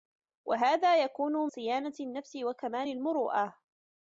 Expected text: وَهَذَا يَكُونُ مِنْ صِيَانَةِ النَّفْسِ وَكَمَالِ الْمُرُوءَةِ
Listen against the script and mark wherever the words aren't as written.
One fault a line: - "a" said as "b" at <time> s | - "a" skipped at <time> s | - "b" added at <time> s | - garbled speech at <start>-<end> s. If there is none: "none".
- "مِنْ" skipped at 1.5 s